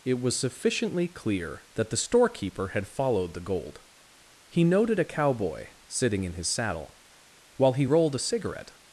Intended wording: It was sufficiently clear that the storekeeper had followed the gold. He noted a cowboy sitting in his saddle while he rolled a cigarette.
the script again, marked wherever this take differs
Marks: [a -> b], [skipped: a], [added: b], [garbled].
It was sufficiently clear that the storekeeper had followed the gold. He noted a cowboy sitting in his saddle while he rolled a cigarette.